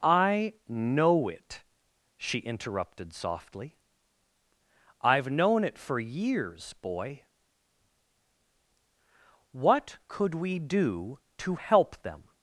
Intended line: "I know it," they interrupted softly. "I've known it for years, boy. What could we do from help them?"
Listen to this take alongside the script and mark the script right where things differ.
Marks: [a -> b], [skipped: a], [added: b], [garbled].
"I know it," [they -> she] interrupted softly. "I've known it for years, boy. What could we do [from -> to] help them?"